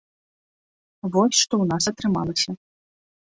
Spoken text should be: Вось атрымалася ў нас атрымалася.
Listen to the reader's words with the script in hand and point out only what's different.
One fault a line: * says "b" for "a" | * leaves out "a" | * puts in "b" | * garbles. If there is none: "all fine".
* says "што" for "атрымалася"